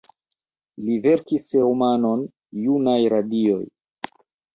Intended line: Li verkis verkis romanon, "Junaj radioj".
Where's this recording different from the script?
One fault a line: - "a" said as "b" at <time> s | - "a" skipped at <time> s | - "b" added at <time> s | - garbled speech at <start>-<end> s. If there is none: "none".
- "verkis" skipped at 1.5 s